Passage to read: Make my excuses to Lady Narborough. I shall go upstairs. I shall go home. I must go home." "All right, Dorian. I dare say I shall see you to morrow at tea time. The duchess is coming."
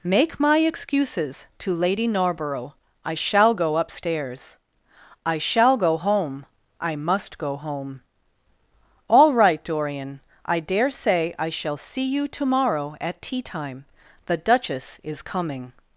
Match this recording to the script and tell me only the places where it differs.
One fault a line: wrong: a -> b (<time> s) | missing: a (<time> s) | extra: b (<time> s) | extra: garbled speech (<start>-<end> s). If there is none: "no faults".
no faults